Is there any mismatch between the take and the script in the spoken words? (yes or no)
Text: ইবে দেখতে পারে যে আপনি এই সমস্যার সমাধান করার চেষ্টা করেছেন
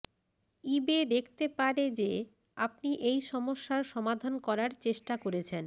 no